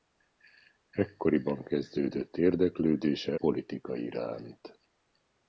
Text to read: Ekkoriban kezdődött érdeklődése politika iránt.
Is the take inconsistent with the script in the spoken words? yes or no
no